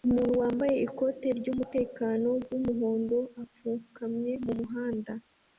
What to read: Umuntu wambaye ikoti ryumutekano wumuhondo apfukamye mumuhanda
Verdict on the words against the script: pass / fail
pass